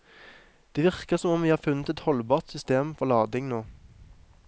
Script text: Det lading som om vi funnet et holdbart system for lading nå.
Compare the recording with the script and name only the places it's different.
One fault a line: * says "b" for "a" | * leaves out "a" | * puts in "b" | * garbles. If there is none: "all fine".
* says "virker" for "lading"
* puts in "har"